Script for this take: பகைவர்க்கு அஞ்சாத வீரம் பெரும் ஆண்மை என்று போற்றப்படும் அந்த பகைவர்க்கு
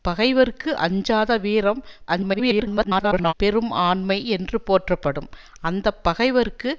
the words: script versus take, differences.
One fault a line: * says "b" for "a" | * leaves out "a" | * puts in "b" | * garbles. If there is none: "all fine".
* garbles